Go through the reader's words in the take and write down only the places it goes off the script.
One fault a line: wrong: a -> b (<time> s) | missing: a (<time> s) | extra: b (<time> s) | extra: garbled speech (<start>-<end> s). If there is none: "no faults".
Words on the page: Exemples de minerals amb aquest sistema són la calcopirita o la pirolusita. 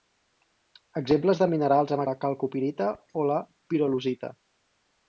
missing: aquest sistema són (2.0 s)